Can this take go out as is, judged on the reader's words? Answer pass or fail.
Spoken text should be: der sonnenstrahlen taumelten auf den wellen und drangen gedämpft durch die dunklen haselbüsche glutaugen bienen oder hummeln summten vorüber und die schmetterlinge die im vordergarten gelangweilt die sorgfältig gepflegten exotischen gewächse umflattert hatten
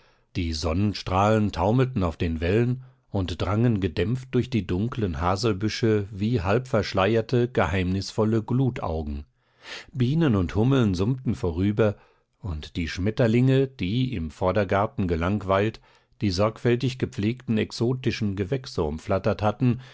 fail